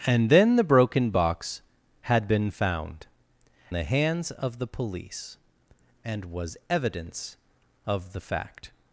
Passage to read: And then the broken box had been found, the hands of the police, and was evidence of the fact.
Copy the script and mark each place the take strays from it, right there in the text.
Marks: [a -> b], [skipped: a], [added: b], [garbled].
And then the broken box had been found, the hands of the police, and was evidence of the fact.